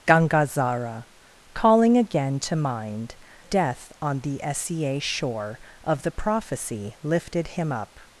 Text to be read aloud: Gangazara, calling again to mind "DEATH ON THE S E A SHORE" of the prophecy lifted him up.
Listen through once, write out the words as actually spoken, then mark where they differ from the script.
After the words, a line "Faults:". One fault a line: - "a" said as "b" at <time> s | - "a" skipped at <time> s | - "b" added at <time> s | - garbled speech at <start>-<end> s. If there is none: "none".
Gangazara, calling again to mind "DEATH ON THE S E A SHORE" of the prophecy lifted him up.
Faults:
none